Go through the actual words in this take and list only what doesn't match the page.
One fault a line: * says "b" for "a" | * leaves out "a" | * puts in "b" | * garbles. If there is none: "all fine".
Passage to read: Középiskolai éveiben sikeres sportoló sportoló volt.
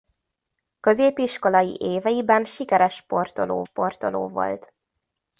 all fine